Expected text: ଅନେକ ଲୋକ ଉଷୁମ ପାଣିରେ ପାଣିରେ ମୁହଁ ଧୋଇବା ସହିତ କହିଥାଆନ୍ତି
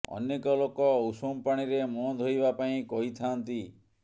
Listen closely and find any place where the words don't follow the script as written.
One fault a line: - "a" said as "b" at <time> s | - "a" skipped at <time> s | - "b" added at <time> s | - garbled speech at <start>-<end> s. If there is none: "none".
- "ପାଣିରେ" skipped at 1.8 s
- "ସହିତ" said as "ପାଇଁ" at 2.6 s